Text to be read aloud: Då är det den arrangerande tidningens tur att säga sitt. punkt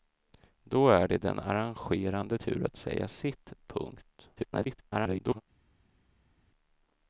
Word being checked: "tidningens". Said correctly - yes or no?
no